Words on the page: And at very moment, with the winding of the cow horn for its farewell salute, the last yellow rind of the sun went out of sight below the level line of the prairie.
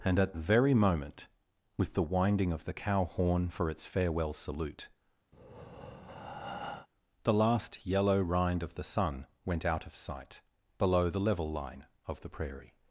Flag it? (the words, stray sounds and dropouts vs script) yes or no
yes